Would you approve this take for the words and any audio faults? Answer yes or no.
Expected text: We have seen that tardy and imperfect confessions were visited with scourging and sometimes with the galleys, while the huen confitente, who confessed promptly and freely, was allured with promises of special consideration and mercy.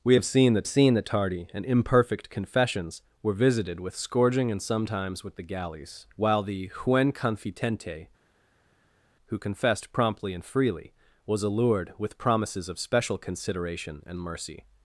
no